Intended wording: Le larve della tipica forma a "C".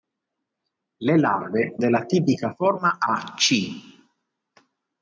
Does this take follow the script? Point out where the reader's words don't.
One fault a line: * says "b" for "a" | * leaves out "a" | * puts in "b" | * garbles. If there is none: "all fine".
all fine